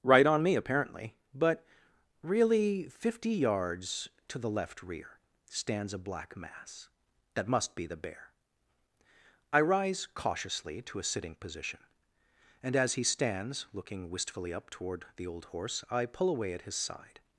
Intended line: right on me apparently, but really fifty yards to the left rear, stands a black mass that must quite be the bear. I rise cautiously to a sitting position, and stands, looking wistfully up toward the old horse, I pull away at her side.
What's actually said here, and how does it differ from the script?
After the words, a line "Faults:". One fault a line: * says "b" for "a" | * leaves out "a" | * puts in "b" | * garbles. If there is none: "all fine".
right on me apparently, but really fifty yards to the left rear, stands a black mass that must be the bear. I rise cautiously to a sitting position, and as he stands, looking wistfully up toward the old horse, I pull away at his side.
Faults:
* leaves out "quite"
* puts in "as he"
* says "his" for "her"